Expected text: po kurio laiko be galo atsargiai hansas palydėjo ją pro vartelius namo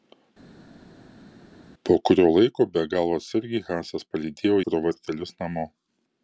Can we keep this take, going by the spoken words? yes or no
no